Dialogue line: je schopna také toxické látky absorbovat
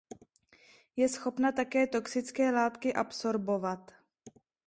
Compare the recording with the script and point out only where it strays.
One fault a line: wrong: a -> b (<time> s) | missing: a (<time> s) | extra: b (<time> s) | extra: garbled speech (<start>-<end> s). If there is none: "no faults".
no faults